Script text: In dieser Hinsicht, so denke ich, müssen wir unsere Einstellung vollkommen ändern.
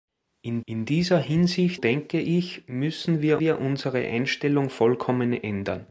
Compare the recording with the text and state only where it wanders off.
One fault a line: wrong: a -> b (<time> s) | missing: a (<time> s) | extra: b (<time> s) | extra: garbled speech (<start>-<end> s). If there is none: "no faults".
extra: in (0.7 s)
missing: so (1.8 s)
extra: wir (3.4 s)